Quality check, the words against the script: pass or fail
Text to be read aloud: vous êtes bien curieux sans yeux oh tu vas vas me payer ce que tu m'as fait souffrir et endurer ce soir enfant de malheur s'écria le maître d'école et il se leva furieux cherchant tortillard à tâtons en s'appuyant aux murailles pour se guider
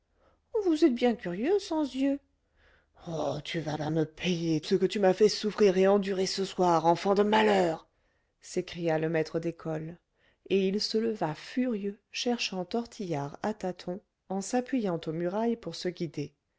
pass